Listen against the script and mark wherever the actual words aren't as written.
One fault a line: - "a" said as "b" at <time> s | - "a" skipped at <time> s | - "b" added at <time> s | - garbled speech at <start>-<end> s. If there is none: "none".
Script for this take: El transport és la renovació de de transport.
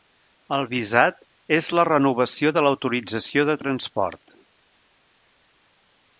- "transport" said as "visat" at 0.7 s
- "l'autorització" added at 2.7 s